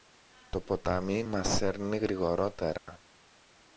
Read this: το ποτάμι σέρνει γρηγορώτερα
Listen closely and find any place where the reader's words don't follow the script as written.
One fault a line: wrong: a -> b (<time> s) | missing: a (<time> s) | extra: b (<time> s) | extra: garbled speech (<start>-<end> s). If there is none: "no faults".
extra: μας (1.2 s)